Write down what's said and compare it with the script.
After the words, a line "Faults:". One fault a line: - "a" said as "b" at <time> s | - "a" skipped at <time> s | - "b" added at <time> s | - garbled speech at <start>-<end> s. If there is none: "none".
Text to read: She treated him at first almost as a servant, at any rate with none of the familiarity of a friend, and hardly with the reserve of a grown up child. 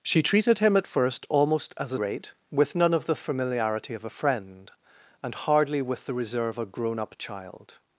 She treated him at first almost as a rate with none of the familiarity of a friend, and hardly with the reserve a grown up child.
Faults:
- "servant at any" skipped at 2.0 s
- "of" skipped at 6.6 s